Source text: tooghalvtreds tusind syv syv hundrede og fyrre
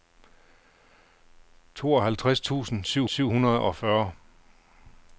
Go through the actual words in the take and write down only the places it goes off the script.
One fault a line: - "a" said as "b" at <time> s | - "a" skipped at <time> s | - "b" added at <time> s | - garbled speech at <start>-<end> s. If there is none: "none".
none